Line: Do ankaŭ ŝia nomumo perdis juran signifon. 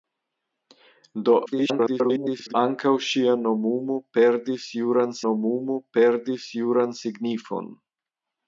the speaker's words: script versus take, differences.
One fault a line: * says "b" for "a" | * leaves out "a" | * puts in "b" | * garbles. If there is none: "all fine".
* garbles
* puts in "nomumo perdis juran"